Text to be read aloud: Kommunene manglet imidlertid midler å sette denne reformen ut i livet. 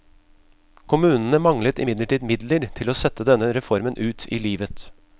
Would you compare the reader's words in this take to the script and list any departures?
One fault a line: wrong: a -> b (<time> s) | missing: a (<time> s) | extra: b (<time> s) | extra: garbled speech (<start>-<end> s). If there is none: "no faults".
extra: til (2.8 s)